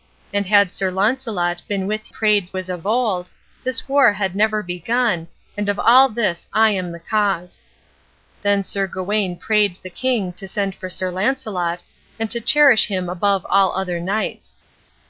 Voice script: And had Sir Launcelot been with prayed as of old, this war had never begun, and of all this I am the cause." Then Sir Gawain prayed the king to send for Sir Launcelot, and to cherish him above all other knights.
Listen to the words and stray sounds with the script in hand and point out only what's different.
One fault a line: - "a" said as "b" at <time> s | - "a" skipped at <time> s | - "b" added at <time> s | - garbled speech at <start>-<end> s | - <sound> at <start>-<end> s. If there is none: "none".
none